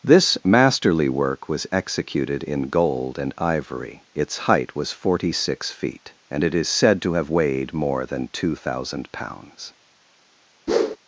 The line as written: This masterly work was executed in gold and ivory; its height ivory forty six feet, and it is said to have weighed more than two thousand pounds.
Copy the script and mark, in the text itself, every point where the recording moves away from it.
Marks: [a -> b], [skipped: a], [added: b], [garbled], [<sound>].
This masterly work was executed in gold and ivory; its height [ivory -> was] forty six feet, and it is said to have weighed more than two thousand pounds. [whoosh]